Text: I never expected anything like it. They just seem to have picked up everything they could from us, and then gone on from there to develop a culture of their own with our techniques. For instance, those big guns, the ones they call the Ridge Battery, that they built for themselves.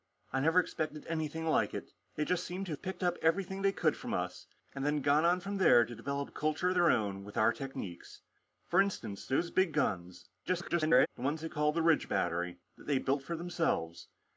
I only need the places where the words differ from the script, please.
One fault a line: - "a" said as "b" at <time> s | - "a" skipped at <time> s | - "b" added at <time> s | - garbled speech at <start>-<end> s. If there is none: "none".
- garbled speech at 10.5-11.1 s